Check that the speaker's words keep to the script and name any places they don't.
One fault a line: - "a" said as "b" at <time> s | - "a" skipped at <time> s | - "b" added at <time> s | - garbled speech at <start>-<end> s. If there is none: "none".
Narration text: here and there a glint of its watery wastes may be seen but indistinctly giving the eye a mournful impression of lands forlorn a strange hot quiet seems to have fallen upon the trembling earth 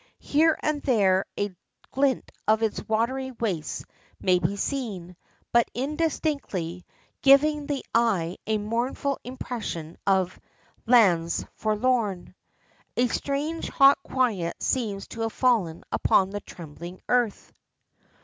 none